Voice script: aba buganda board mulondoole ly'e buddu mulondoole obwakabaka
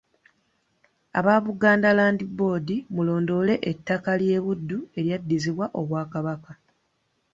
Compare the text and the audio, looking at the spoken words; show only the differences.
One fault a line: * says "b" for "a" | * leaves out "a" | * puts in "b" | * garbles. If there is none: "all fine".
* puts in "land"
* puts in "ettaka"
* says "eryaddizibwa" for "mulondoole"